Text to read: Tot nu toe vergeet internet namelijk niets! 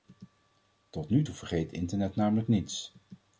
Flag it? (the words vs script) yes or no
no